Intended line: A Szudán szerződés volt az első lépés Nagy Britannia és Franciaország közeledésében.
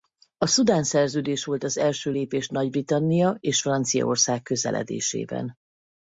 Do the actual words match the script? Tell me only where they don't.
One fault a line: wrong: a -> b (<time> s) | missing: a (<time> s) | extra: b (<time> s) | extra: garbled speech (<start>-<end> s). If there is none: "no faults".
no faults